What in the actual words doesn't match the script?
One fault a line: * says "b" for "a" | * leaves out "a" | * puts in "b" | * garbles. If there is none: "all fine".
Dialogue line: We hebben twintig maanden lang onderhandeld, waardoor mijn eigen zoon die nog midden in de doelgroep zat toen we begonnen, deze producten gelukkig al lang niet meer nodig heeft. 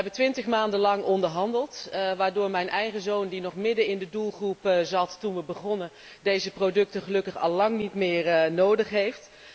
all fine